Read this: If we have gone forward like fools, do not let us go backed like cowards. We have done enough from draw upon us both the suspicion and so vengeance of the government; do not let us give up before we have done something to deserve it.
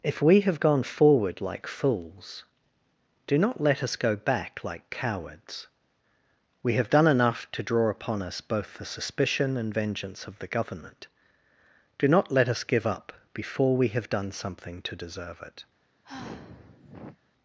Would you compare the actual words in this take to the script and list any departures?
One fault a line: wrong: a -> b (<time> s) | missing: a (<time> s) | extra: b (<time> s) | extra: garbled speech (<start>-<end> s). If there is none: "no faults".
wrong: backed -> back (4.2 s)
wrong: from -> to (7.5 s)
missing: so (9.7 s)